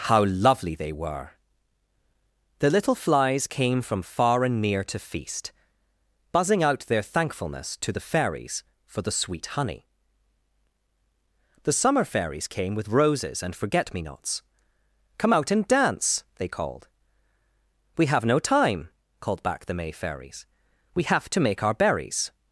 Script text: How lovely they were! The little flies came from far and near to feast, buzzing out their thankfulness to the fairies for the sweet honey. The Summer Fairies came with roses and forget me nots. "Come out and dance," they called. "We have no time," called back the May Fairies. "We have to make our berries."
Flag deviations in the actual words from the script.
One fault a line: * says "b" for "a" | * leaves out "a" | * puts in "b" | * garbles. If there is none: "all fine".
all fine